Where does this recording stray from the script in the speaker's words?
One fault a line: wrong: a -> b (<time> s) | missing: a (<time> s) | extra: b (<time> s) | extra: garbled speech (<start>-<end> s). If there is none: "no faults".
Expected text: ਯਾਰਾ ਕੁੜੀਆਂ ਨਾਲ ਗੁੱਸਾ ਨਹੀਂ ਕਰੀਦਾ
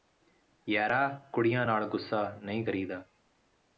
no faults